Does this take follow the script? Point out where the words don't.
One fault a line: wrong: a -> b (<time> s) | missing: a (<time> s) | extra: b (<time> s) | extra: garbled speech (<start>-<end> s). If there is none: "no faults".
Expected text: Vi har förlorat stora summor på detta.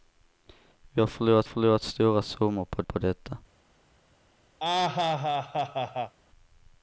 extra: förlorat (1.4 s)
extra: på (2.8 s)